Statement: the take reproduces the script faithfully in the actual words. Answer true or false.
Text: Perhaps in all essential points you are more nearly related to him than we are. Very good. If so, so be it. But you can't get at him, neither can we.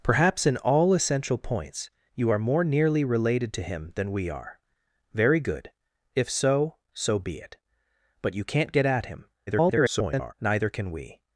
false